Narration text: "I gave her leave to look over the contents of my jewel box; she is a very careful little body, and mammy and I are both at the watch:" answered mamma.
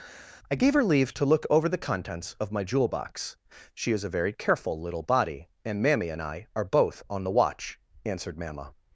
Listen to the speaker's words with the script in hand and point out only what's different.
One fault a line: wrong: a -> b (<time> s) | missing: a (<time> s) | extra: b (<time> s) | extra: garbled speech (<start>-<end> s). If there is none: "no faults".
wrong: at -> on (7.1 s)